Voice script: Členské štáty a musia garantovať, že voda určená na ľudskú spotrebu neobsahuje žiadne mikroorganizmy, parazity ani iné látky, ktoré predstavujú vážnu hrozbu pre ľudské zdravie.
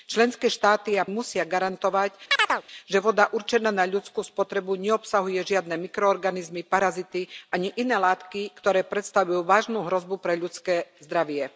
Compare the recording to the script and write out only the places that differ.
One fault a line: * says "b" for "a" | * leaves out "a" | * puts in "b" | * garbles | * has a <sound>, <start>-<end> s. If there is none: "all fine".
* has a chirp, 2.3-2.6 s